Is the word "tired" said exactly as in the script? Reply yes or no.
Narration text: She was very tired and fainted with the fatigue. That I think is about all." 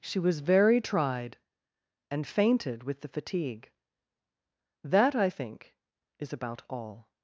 no